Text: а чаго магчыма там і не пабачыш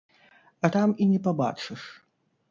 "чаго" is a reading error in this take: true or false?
true